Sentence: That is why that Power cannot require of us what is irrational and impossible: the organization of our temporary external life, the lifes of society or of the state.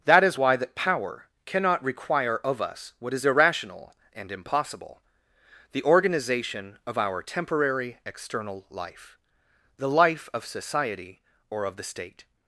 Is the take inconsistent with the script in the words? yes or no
yes